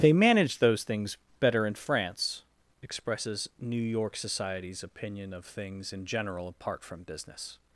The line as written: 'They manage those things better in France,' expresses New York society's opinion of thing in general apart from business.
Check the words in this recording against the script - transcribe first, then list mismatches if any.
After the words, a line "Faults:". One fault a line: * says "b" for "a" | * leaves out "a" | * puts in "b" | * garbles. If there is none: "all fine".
'They manage those things better in France,' expresses New York society's opinion of things in general apart from business.
Faults:
* says "things" for "thing"